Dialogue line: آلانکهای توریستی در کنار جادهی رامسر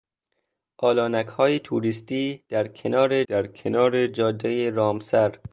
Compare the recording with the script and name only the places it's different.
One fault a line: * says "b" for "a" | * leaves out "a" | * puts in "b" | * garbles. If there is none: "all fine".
* puts in "در کنار"